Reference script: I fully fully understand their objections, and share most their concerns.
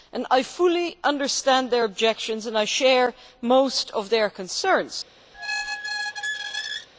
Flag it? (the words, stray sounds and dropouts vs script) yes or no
yes